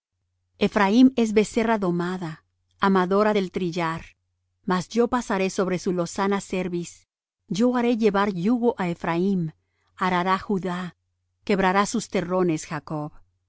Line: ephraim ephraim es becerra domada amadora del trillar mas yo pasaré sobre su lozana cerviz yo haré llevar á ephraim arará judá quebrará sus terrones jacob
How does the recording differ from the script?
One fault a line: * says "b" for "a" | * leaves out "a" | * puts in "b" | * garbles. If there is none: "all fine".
* leaves out "ephraim"
* puts in "yugo"